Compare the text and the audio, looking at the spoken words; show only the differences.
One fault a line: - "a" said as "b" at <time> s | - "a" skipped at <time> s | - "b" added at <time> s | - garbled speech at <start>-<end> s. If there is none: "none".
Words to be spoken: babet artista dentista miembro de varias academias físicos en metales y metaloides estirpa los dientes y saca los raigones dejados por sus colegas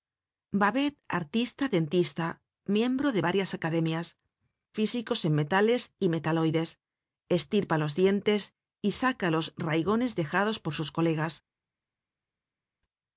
none